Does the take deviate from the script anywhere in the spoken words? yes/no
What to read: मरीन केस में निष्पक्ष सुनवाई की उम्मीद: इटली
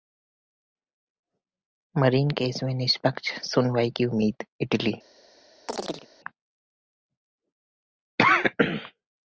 no